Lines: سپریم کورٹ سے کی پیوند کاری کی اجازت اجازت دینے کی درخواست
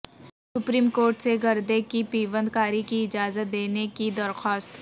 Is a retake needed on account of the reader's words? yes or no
yes